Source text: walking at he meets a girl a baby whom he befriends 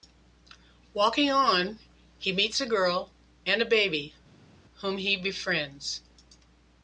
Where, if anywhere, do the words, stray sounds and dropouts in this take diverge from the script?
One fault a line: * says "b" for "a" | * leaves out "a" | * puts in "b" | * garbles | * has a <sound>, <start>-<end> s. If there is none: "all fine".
* says "on" for "at"
* puts in "and"